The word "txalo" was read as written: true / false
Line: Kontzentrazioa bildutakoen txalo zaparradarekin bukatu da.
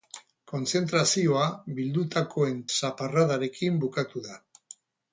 false